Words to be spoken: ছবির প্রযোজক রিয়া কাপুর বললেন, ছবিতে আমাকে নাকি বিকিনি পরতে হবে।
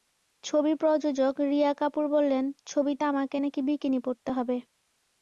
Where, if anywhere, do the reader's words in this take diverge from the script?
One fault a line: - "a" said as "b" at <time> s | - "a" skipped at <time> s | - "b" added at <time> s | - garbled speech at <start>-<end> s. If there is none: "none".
none